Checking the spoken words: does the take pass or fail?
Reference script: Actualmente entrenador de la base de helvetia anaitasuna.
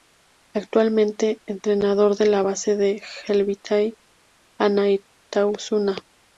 pass